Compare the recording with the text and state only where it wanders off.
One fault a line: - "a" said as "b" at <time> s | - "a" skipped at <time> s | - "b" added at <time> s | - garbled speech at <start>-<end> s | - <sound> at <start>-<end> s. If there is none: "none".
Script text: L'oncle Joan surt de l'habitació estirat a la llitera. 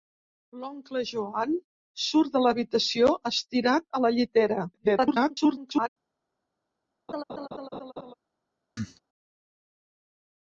- garbled speech at 4.7-5.9 s
- laugh at 7.1-8.1 s
- cough at 8.8-9.0 s